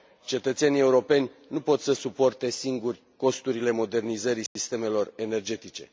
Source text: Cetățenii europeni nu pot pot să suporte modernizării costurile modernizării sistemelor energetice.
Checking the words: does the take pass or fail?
fail